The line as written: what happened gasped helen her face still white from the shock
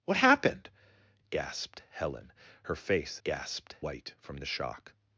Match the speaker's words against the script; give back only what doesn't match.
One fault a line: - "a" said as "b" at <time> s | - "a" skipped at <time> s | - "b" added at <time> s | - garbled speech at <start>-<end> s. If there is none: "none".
- "still" said as "gasped" at 3.2 s